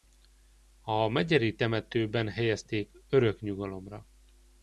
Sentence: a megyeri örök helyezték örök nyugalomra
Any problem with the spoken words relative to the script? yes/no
yes